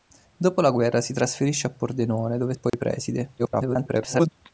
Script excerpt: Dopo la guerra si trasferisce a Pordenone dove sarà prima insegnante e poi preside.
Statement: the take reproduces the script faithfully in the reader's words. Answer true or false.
false